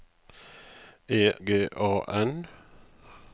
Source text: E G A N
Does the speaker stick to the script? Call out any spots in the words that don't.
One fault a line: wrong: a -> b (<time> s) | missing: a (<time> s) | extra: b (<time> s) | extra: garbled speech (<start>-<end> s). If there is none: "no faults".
no faults